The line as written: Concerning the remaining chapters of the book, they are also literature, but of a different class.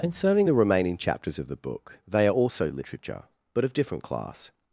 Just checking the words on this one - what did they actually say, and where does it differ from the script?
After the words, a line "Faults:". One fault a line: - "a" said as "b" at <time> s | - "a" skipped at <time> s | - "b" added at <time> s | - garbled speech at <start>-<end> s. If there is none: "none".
Concerning the remaining chapters of the book, they are also literature, but of different class.
Faults:
- "a" skipped at 3.7 s